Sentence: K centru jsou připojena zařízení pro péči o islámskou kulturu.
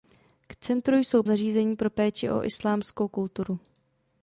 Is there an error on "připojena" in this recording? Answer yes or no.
yes